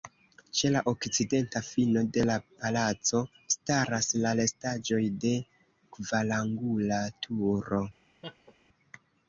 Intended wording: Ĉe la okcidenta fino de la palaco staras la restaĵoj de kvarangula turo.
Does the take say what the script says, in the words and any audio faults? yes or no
no